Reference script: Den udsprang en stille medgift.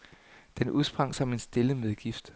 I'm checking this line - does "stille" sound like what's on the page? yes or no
yes